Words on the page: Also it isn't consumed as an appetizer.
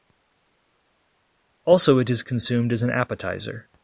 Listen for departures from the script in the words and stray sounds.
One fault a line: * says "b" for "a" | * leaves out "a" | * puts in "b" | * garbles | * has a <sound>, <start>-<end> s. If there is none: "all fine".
* says "is" for "isn't"